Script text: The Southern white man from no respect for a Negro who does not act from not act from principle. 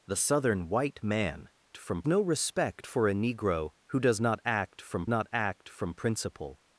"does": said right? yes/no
yes